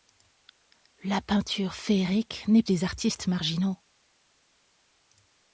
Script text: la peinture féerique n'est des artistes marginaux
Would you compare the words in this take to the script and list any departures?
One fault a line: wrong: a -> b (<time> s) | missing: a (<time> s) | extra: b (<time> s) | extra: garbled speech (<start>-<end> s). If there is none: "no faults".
no faults